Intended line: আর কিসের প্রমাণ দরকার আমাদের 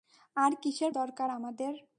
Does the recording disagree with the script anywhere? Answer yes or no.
yes